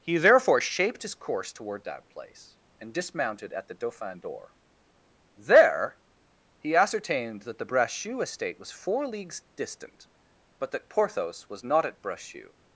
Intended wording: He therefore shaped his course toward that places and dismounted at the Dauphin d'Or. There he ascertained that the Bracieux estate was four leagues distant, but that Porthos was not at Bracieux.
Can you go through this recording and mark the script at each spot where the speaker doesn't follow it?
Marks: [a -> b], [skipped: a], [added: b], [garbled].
He therefore shaped his course toward that [places -> place] and dismounted at the Dauphin d'Or. There he ascertained that the Bracieux estate was four leagues distant, but that Porthos was not at Bracieux.